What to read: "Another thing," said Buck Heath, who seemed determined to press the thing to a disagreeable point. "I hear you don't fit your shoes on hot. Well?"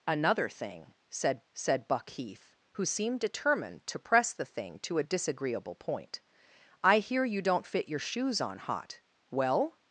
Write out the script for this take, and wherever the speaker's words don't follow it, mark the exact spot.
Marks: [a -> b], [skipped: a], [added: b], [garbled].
"Another thing," said [added: said] Buck Heath, who seemed determined to press the thing to a disagreeable point. "I hear you don't fit your shoes on hot. Well?"